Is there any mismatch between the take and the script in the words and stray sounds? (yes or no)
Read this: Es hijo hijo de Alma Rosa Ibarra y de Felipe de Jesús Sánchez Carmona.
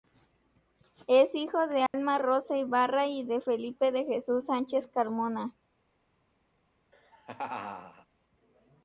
yes